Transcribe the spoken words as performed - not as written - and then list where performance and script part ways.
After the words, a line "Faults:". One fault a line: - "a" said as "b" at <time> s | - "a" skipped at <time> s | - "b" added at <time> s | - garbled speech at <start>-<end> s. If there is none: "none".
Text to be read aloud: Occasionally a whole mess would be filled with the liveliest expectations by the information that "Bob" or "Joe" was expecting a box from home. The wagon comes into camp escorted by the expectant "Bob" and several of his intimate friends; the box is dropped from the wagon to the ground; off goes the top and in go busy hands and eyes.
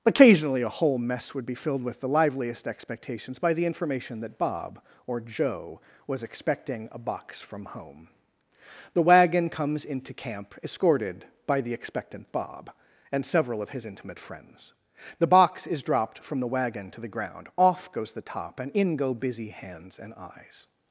Occasionally a whole mess would be filled with the liveliest expectations by the information that "Bob" or "Joe" was expecting a box from home. The wagon comes into camp escorted by the expectant "Bob" and several of his intimate friends; the box is dropped from the wagon to the ground; off goes the top and in go busy hands and eyes.
Faults:
none